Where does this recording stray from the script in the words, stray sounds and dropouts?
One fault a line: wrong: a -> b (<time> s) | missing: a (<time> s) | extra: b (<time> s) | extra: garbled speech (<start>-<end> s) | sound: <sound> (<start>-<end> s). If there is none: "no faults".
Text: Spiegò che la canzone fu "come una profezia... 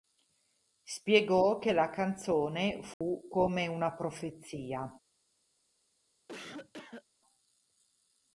sound: dropout (2.9-3.0 s)
sound: cough (6.3-7.0 s)